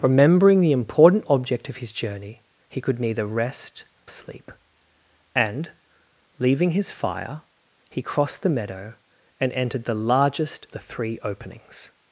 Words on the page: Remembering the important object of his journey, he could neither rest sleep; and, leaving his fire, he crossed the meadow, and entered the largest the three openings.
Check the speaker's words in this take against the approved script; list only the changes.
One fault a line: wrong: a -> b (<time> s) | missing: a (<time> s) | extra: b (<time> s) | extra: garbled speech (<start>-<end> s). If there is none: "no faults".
no faults